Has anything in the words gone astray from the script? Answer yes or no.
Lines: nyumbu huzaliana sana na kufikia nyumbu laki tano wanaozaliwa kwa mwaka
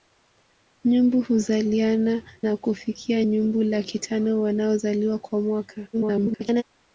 yes